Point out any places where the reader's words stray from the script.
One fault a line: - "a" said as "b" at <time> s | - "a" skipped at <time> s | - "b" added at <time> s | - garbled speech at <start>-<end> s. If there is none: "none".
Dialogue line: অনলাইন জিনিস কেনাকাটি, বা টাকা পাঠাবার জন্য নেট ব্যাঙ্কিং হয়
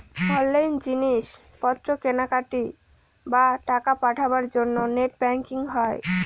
- "পত্র" added at 1.6 s